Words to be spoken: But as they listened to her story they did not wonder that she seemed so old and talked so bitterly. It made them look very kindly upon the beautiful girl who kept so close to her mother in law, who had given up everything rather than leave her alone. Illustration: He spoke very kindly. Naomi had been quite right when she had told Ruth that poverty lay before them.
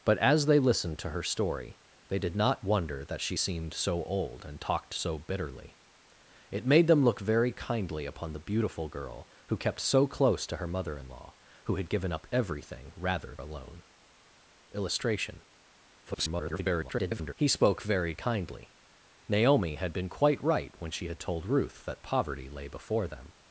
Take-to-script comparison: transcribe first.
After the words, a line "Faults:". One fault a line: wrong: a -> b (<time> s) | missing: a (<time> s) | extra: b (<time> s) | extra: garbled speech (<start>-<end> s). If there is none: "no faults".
But as they listened to her story they did not wonder that she seemed so old and talked so bitterly. It made them look very kindly upon the beautiful girl who kept so close to her mother in law, who had given up everything rather alone. Illustration: [garbled] He spoke very kindly. Naomi had been quite right when she had told Ruth that poverty lay before them.
Faults:
missing: than leave her (13.4 s)
extra: garbled speech (16.0-17.3 s)